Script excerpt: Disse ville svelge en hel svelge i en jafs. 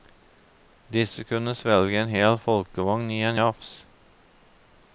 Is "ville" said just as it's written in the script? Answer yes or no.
no